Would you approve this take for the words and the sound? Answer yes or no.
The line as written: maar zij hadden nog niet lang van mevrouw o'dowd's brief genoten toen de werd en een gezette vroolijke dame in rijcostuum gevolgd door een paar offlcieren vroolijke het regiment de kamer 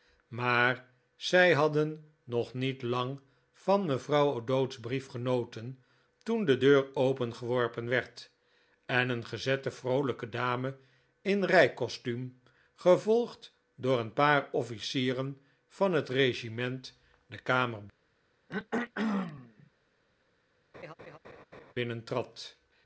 no